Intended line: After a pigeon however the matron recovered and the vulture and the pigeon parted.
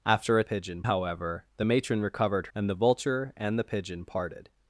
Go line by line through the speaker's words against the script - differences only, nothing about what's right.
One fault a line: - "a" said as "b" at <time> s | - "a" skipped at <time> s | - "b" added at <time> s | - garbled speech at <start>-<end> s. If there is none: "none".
none